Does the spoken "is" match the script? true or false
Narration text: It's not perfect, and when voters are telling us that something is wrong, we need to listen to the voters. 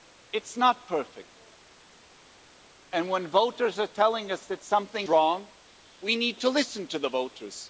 false